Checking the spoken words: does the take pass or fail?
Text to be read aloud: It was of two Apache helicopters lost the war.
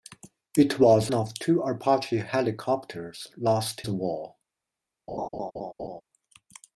pass